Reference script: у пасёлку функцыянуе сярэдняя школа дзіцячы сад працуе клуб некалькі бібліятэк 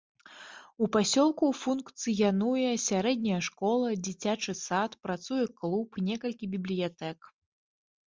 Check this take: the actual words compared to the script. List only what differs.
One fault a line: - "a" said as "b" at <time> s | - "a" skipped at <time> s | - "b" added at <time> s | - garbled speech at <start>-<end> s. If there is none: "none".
none